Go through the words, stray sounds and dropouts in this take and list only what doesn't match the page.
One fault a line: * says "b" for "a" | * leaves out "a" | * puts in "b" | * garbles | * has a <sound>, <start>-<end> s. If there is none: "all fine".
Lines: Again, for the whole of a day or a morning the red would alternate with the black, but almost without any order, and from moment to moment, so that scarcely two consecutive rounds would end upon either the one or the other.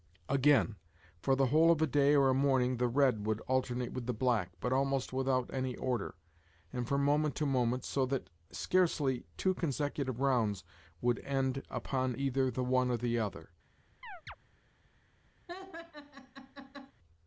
* has a chirp, 14.0-14.4 s
* has a laugh, 15.5-16.9 s